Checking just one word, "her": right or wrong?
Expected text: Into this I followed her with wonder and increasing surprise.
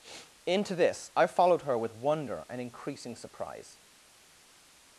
right